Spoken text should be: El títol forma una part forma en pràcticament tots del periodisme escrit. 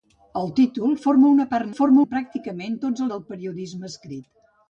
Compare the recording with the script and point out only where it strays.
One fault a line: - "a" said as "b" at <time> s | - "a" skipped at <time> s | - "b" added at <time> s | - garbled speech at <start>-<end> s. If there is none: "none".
none